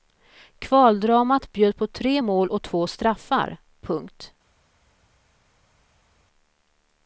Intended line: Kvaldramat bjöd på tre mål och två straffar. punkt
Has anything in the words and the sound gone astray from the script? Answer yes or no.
no